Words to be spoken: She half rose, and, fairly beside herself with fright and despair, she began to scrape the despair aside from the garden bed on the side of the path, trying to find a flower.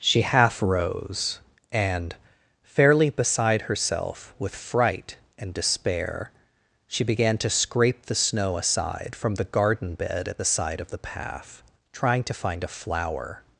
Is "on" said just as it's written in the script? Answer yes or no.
no